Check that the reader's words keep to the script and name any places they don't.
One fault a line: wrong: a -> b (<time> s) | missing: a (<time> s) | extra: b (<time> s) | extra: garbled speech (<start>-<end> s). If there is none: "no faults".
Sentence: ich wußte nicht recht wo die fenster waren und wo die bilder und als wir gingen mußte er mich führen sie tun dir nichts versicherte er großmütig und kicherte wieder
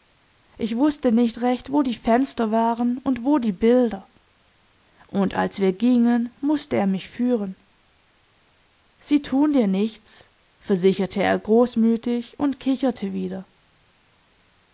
no faults